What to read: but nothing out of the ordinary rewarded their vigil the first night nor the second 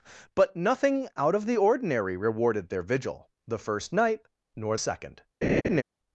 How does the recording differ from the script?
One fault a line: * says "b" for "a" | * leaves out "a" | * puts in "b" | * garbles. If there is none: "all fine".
* leaves out "the"